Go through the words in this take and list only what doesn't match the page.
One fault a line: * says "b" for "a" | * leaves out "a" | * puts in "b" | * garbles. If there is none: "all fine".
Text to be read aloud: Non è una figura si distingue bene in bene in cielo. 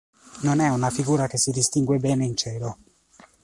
* puts in "che"
* leaves out "bene in"